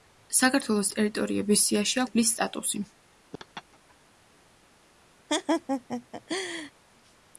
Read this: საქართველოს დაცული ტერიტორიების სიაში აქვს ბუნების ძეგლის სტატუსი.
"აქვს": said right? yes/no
no